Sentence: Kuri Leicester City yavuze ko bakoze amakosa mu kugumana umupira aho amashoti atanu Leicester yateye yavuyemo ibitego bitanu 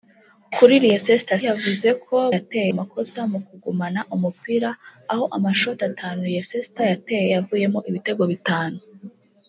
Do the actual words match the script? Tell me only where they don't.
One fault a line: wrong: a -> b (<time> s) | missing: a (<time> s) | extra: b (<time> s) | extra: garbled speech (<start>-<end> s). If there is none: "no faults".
missing: City (1.4 s)
wrong: bakoze -> yateye (2.4 s)